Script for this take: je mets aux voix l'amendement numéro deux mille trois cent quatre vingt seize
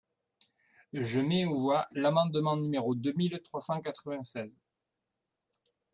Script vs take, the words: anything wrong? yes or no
no